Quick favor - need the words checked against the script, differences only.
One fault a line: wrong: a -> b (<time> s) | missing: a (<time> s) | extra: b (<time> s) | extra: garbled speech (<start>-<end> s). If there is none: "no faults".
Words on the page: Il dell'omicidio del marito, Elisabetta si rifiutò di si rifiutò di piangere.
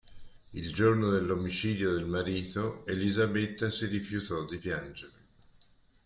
extra: giorno (0.7 s)
missing: si rifiutò di (4.6 s)